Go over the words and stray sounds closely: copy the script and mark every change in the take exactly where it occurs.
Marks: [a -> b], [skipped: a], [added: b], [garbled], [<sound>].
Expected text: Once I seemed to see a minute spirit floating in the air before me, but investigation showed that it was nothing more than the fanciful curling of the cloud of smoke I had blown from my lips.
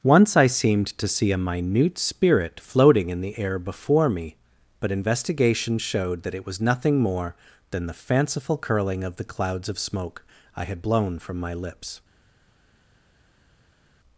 Once I seemed to see a minute spirit floating in the air before me, but investigation showed that it was nothing more than the fanciful curling of the [cloud -> clouds] of smoke I had blown from my lips.